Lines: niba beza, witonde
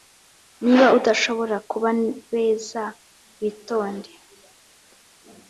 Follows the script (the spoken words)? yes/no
no